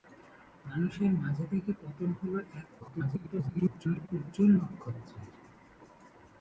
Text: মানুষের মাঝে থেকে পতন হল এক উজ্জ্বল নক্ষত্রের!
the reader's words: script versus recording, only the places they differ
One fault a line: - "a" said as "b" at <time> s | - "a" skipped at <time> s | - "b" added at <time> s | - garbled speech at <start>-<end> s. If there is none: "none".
- garbled speech at 2.8-4.1 s